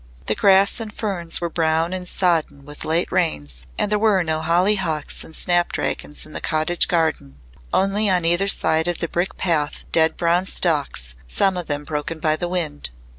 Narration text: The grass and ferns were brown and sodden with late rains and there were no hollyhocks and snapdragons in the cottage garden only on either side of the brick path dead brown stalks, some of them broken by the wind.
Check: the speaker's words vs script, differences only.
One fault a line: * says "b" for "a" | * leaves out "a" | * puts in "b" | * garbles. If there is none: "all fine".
all fine